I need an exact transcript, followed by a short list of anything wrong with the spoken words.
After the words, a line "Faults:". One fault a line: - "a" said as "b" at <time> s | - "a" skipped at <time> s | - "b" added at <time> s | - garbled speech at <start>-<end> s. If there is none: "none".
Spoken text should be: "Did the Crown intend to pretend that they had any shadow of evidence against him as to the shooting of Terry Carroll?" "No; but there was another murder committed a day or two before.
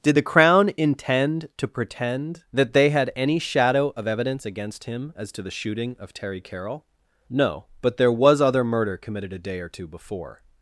"Did the Crown intend to pretend that they had any shadow of evidence against him as to the shooting of Terry Carroll?" "No; but there was other murder committed a day or two before.
Faults:
- "another" said as "other" at 8.4 s